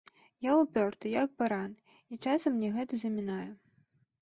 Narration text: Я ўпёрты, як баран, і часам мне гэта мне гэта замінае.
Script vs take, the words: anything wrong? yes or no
yes